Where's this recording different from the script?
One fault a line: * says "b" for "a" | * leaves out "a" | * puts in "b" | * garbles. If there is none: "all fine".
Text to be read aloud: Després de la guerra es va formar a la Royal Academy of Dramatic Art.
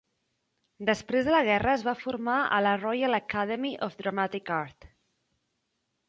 all fine